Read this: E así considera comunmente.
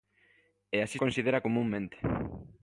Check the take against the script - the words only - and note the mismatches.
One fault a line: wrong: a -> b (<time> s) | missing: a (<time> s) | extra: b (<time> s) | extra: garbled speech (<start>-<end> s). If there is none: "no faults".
no faults